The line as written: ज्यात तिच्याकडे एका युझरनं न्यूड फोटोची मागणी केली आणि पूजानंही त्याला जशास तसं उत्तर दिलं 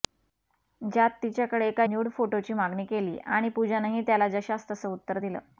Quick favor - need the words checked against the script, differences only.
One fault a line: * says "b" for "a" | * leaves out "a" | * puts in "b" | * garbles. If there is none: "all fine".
* leaves out "युझरनं"